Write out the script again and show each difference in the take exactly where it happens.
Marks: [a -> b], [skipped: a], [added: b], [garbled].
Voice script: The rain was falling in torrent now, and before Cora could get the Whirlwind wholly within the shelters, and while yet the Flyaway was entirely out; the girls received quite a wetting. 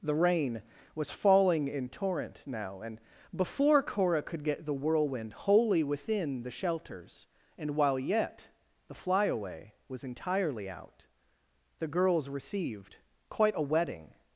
The rain was falling in torrent now, and before Cora could get the Whirlwind wholly within the shelters, and while yet the Flyaway was entirely out; the girls received quite a wetting.